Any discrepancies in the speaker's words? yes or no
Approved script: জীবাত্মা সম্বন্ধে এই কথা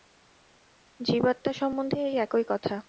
yes